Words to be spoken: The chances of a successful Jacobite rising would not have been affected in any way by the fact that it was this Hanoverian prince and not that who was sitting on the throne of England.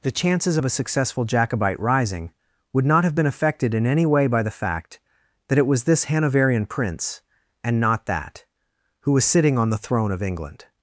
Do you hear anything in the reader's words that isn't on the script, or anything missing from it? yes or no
no